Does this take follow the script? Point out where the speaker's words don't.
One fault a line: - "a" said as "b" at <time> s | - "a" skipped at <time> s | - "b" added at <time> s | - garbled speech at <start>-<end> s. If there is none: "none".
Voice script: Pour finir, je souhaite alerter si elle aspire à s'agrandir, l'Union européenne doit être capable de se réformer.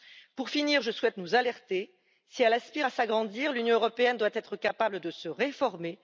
- "nous" added at 1.2 s